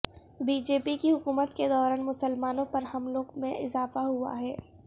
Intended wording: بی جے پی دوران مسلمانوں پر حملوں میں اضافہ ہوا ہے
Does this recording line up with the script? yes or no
no